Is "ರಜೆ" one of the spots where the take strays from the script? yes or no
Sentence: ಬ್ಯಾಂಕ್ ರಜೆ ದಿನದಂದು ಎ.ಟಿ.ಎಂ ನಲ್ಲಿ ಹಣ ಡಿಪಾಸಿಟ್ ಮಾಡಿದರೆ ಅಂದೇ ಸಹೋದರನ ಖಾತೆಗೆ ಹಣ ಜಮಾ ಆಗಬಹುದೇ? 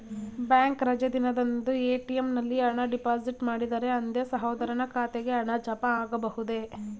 no